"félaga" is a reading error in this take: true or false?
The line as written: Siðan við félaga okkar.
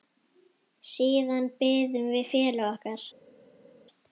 false